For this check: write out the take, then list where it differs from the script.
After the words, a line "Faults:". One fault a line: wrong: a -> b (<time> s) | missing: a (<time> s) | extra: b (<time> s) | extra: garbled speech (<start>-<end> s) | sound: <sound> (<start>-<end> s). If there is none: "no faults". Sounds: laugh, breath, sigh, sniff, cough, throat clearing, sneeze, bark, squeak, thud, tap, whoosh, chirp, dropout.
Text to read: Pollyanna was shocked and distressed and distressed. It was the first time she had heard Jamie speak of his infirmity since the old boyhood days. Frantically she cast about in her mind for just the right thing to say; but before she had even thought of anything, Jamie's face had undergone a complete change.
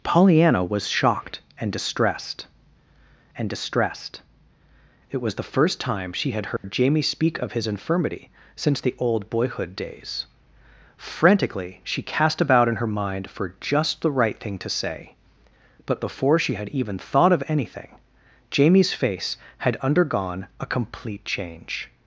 Pollyanna was shocked and distressed and distressed. It was the first time she had heard Jamie speak of his infirmity since the old boyhood days. Frantically she cast about in her mind for just the right thing to say; but before she had even thought of anything, Jamie's face had undergone a complete change.
Faults:
sound: dropout (6.6-6.6 s)